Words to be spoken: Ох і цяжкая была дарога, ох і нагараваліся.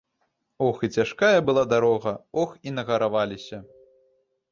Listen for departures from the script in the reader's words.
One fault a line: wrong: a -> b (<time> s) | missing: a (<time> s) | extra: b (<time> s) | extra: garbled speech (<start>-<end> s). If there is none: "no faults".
no faults